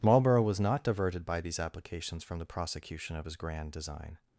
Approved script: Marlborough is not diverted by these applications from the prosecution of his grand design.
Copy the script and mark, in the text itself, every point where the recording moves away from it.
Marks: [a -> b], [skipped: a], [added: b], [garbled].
Marlborough [is -> was] not diverted by these applications from the prosecution of his grand design.